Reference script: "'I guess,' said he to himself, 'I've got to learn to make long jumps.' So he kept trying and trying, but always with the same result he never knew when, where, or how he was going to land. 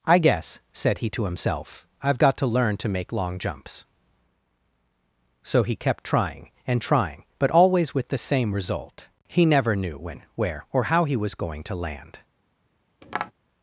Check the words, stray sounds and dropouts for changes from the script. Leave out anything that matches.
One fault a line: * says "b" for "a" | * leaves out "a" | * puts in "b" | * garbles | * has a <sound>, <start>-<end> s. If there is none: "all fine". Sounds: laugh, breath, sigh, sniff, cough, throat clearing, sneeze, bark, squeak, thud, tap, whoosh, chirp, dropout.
* has a tap, 13.0-13.3 s